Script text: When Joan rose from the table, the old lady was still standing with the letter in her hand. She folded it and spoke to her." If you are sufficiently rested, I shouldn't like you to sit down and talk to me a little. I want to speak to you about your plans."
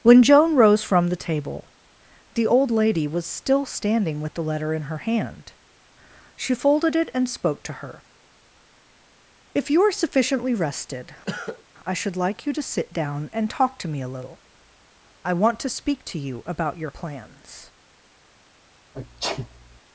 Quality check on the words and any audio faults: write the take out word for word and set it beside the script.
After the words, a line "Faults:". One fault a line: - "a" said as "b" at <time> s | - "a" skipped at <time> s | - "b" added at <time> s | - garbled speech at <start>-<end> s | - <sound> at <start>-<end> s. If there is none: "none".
When Joan rose from the table, the old lady was still standing with the letter in her hand. She folded it and spoke to her." If you are sufficiently rested, I should like you to sit down and talk to me a little. I want to speak to you about your plans."
Faults:
- cough at 11.2-11.6 s
- "shouldn't" said as "should" at 11.9 s
- sneeze at 18.9-19.8 s